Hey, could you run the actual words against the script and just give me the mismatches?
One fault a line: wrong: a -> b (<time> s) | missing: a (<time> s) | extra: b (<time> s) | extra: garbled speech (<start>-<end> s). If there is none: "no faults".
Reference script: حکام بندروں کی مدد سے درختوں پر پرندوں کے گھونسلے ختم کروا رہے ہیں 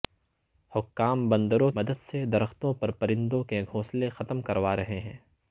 missing: کی (1.7 s)